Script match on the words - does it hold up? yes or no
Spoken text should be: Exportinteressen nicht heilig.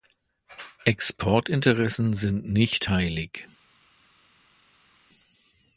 no